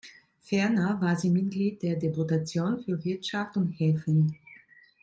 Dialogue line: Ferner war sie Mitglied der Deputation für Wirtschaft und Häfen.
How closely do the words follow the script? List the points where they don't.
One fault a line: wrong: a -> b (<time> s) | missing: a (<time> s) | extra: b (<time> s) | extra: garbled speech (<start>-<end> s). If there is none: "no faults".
no faults